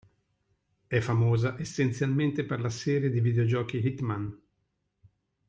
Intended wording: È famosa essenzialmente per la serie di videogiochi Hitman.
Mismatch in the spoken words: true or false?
false